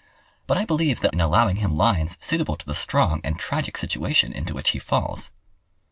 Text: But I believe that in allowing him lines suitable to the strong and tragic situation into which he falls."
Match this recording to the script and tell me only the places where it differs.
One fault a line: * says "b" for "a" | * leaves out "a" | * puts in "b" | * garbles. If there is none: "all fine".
all fine